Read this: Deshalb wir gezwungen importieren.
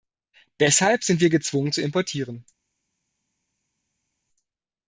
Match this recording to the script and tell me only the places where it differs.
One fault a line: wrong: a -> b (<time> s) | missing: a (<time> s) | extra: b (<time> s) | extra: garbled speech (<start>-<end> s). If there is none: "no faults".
extra: sind (1.0 s)
extra: zu (1.7 s)